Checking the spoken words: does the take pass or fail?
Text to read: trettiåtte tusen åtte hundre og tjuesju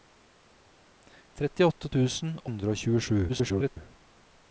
fail